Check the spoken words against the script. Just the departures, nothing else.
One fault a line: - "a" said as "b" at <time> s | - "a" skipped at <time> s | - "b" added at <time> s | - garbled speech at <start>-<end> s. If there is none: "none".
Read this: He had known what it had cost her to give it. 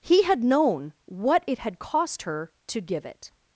none